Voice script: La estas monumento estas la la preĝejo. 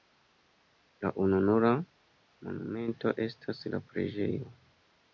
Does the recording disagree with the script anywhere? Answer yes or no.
yes